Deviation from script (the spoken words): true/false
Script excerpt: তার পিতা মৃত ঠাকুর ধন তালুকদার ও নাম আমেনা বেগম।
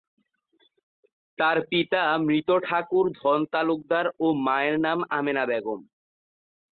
true